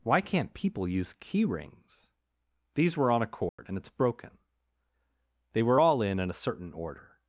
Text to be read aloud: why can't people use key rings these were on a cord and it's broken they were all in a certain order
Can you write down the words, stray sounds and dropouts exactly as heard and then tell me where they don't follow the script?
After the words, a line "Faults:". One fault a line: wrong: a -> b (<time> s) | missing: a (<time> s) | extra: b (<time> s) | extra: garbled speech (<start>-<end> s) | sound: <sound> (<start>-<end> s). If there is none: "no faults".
why can't people use key rings these were on a cord and it's broken they were all in in a certain order
Faults:
sound: dropout (3.5-3.6 s)
extra: in (6.2 s)